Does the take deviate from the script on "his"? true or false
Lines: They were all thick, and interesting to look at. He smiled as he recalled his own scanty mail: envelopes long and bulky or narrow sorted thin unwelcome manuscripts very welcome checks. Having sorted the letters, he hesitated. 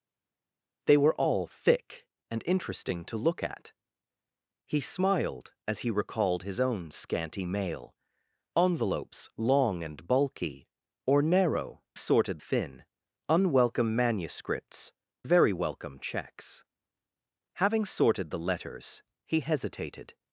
false